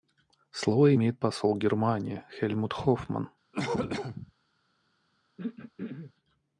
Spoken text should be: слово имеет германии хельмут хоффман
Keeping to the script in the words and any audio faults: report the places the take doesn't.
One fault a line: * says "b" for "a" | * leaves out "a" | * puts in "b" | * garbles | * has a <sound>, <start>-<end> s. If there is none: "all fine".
* puts in "посол"
* has a cough, 3.5-4.3 s
* has a throat clearing, 5.4-6.1 s